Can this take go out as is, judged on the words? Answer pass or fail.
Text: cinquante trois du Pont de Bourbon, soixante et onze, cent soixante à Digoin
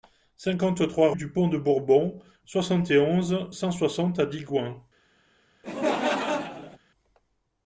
pass